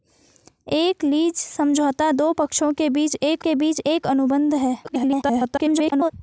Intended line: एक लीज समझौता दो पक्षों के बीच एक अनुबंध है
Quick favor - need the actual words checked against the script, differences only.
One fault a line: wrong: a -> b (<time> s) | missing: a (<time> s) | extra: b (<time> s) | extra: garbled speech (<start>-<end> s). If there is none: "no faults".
extra: के बीच एक (3.4 s)
extra: garbled speech (4.8-6.1 s)